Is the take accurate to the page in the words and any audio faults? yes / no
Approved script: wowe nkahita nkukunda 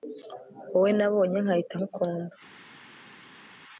no